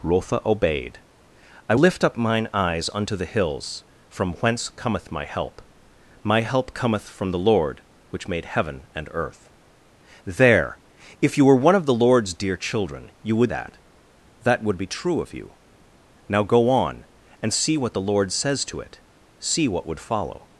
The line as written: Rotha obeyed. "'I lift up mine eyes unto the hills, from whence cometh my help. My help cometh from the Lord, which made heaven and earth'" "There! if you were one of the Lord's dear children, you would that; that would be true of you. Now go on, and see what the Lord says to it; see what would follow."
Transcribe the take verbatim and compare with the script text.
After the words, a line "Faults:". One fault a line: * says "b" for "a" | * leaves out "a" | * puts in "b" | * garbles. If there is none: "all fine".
Rotha obeyed. "'I lift up mine eyes unto the hills, from whence cometh my help. My help cometh from the Lord, which made heaven and earth'" "There! if you were one of the Lord's dear children, you would that; that would be true of you. Now go on, and see what the Lord says to it; see what would follow."
Faults:
all fine